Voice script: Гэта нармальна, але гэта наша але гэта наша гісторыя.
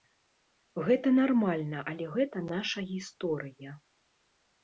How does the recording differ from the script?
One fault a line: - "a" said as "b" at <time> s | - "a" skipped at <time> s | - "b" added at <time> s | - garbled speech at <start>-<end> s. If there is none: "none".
- "але гэта наша" skipped at 2.8 s